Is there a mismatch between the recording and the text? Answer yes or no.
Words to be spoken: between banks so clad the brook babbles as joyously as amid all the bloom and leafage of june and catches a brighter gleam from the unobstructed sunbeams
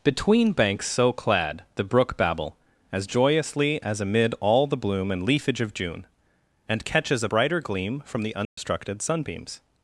yes